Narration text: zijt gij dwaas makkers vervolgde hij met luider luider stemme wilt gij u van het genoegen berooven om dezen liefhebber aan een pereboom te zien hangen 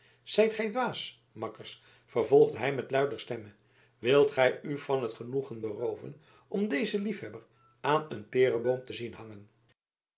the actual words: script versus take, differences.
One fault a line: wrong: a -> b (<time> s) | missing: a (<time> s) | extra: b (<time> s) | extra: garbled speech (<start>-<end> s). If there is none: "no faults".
missing: luider (3.2 s)